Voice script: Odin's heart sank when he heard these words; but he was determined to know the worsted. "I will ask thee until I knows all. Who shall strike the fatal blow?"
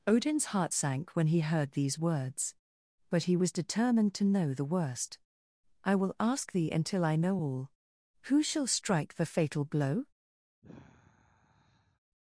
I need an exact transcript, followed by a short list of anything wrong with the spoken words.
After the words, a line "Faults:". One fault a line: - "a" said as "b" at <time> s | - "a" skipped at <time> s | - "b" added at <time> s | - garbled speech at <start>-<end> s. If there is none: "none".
Odin's heart sank when he heard these words; but he was determined to know the worst. "I will ask thee until I know all. Who shall strike the fatal blow?"
Faults:
- "worsted" said as "worst" at 4.6 s
- "knows" said as "know" at 7.2 s